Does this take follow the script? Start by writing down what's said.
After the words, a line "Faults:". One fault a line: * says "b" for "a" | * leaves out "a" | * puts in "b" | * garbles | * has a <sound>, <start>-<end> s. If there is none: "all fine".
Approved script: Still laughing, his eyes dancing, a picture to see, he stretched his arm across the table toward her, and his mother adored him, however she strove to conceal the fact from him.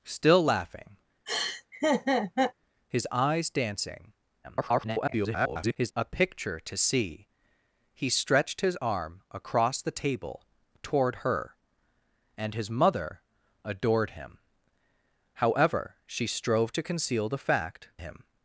Still laughing, his eyes dancing, [garbled] a picture to see, he stretched his arm across the table toward her, and his mother adored him, however she strove to conceal the fact him.
Faults:
* has a laugh, 1.3-2.5 s
* garbles
* leaves out "from"